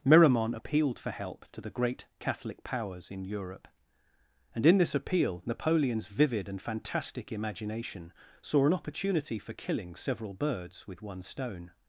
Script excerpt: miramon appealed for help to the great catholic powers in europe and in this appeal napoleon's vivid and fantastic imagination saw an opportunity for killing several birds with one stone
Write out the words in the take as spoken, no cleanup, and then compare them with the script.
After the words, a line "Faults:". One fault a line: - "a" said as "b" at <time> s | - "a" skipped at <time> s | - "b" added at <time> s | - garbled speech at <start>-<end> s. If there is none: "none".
miramon appealed for help to the great catholic powers in europe and in this appeal napoleon's vivid and fantastic imagination saw an opportunity for killing several birds with one stone
Faults:
none